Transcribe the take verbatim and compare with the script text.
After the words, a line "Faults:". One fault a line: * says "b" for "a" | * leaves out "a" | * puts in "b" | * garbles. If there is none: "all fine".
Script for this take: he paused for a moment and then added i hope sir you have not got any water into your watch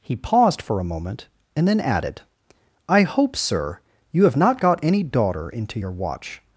he paused for a moment and then added i hope sir you have not got any daughter into your watch
Faults:
* says "daughter" for "water"